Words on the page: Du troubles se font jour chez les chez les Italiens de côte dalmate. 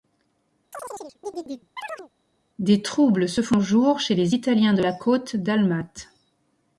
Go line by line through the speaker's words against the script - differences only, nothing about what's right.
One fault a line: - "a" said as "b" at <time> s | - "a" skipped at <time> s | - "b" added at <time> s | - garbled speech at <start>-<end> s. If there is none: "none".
- "Du" said as "Des" at 2.6 s
- "chez les" skipped at 4.4 s
- "la" added at 4.8 s